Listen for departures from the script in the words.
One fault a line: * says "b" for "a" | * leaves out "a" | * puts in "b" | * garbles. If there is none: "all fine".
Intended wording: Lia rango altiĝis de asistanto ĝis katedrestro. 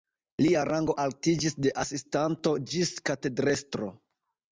all fine